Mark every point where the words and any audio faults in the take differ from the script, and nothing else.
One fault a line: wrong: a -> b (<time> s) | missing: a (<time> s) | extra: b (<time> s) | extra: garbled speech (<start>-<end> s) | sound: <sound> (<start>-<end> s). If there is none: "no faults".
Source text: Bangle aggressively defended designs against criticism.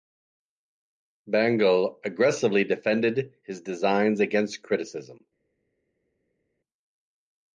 extra: his (3.4 s)